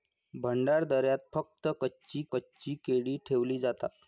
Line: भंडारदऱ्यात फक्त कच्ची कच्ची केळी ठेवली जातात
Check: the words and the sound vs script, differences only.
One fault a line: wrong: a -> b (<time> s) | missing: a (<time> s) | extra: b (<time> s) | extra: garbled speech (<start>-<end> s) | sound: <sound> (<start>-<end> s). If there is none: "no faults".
no faults